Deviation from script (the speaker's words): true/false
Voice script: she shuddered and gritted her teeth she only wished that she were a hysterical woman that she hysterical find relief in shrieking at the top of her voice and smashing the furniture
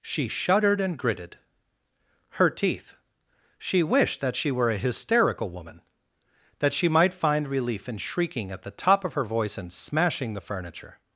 true